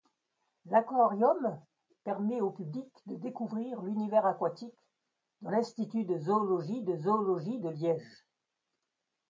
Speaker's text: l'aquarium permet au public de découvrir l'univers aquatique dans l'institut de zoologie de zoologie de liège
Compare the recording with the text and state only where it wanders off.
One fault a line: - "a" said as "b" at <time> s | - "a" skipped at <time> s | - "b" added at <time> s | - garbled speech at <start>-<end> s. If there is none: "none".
none